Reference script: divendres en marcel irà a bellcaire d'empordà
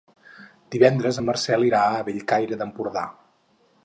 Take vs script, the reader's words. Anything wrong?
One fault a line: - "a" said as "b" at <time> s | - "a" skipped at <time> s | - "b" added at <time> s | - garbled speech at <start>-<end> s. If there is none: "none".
none